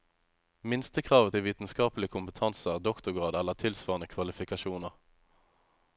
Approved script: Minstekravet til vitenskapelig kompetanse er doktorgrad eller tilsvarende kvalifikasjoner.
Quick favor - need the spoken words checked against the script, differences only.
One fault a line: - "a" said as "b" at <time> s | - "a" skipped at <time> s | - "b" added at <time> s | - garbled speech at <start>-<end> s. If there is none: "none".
none